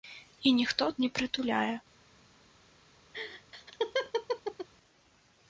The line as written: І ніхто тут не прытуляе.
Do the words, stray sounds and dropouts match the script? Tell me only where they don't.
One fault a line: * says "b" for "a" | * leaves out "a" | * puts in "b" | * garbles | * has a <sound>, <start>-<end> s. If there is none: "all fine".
* leaves out "тут"
* has a laugh, 3.1-4.7 s